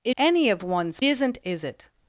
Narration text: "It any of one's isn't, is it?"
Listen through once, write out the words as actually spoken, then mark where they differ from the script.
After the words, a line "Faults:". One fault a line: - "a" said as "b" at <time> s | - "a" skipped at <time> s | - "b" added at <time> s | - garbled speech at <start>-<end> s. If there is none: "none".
"It any of one's isn't, is it?"
Faults:
none